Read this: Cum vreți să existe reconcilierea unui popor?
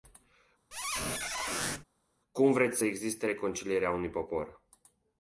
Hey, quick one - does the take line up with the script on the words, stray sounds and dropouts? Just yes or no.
no